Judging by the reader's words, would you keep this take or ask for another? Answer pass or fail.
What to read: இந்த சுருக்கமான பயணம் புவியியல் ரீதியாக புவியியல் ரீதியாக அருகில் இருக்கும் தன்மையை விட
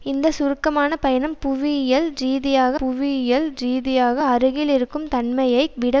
pass